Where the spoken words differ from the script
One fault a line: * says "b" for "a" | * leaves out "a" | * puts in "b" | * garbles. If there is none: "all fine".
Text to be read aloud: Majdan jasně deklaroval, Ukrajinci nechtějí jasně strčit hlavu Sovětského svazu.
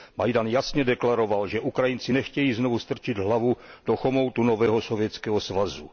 * puts in "že"
* says "znovu" for "jasně"
* puts in "do chomoutu nového"